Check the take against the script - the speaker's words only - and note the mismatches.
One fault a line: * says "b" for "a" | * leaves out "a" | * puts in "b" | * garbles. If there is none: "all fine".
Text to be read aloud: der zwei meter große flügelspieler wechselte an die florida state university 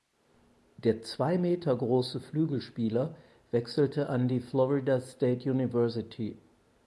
all fine